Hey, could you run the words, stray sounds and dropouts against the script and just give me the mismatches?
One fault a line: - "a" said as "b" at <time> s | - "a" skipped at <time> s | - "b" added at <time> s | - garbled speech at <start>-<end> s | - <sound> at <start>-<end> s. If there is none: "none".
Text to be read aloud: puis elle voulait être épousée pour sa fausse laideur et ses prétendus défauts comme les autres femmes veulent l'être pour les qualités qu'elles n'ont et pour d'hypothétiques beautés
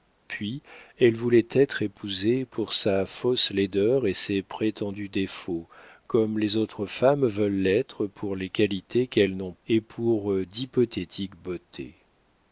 none